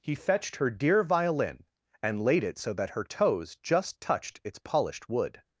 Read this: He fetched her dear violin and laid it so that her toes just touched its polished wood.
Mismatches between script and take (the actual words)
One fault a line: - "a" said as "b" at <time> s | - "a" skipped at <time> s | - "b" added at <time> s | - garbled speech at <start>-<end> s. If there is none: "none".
none